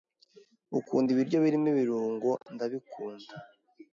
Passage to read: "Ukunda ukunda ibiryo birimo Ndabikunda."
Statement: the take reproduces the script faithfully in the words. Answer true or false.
false